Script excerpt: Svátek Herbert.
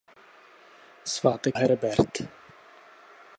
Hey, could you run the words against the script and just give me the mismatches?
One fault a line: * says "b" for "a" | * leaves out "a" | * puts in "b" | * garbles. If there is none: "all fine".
all fine